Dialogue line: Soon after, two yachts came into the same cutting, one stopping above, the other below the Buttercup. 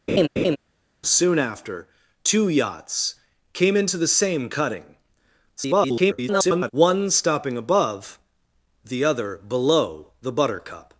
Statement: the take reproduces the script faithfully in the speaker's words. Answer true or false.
false